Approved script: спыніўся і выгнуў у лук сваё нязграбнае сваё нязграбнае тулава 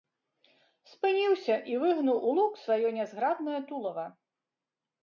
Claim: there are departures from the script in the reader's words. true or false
true